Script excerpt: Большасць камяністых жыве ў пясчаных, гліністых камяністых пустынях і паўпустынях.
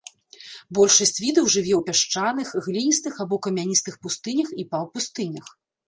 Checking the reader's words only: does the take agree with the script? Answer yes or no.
no